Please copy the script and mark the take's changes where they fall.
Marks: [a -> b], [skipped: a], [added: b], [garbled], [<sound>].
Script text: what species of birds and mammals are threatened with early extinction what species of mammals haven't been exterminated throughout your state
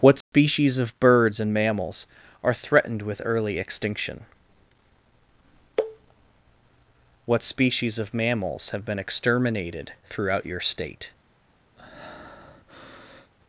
what species [dropout] of birds and mammals are threatened with early extinction what species of mammals [haven't -> have] been exterminated throughout your state [breath]